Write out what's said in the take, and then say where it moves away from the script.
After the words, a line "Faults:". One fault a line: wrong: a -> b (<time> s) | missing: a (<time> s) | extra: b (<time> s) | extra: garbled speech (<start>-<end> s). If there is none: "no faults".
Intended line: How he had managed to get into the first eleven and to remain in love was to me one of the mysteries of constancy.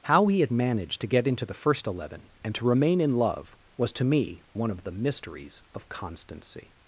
How he had managed to get into the first eleven and to remain in love was to me one of the mysteries of constancy.
Faults:
no faults